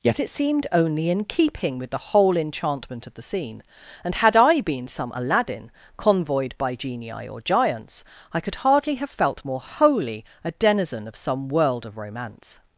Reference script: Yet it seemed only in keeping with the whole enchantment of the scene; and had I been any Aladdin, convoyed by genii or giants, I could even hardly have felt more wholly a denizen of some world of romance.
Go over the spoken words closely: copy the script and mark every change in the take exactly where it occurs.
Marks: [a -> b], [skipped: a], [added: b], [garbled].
Yet it seemed only in keeping with the whole enchantment of the scene; and had I been [any -> some] Aladdin, convoyed by genii or giants, I could [skipped: even] hardly have felt more wholly a denizen of some world of romance.